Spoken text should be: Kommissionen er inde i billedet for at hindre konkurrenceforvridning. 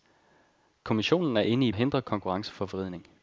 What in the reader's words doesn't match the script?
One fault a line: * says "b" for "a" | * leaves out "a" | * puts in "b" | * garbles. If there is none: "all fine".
* leaves out "billedet for"